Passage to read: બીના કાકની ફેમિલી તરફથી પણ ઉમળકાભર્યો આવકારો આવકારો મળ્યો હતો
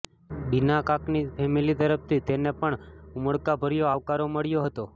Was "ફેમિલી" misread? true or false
false